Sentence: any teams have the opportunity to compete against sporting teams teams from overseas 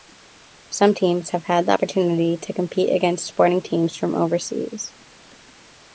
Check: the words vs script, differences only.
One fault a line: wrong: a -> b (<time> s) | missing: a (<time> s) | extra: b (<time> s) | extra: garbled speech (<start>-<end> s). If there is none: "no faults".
wrong: any -> some (0.7 s)
extra: had (1.4 s)
missing: teams (4.0 s)